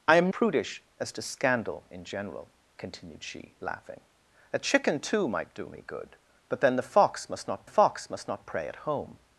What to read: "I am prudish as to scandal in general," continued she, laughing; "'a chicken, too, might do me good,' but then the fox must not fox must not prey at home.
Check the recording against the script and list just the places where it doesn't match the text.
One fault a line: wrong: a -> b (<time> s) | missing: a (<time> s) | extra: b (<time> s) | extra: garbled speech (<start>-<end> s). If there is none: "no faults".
no faults